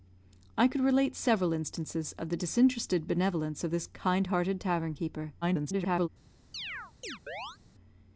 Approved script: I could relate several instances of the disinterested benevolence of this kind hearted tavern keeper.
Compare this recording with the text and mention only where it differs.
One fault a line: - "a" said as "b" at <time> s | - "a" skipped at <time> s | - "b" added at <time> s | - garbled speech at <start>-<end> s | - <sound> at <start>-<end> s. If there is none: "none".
- garbled speech at 5.4-6.1 s
- chirp at 6.5-7.6 s